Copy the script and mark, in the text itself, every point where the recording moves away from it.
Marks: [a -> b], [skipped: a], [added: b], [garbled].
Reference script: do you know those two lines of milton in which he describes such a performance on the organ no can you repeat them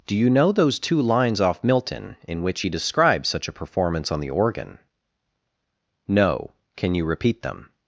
do you know those two lines [of -> off] milton in which he describes such a performance on the organ no can you repeat them